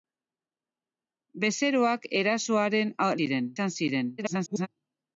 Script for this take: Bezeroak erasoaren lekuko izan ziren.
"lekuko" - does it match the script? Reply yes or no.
no